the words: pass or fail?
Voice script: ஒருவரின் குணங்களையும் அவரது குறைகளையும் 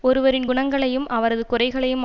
pass